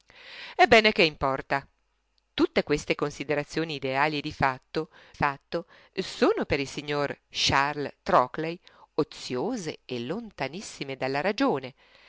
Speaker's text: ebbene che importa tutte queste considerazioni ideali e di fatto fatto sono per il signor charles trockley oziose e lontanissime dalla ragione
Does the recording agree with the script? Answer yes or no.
yes